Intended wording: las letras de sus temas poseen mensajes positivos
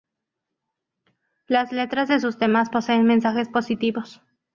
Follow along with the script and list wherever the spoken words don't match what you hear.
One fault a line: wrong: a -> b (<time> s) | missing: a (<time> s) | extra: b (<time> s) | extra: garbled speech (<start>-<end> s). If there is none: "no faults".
no faults